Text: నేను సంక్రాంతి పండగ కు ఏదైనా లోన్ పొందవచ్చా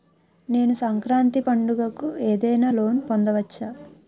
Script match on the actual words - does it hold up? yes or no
yes